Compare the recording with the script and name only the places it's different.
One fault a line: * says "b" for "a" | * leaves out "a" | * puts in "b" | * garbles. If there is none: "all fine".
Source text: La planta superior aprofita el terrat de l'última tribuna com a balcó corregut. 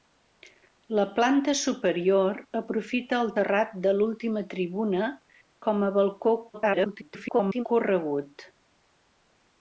* garbles